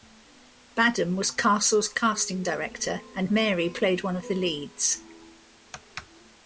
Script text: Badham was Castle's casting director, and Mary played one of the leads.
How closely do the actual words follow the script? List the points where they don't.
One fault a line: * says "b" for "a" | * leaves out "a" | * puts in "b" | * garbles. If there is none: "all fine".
all fine